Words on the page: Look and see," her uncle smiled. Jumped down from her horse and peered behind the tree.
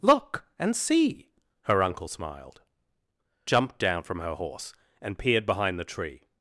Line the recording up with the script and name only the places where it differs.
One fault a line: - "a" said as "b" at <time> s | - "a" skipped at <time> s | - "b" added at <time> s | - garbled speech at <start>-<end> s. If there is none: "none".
none